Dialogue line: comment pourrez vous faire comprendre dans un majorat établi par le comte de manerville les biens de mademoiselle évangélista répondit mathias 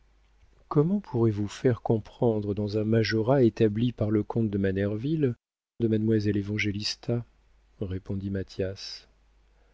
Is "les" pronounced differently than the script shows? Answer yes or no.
yes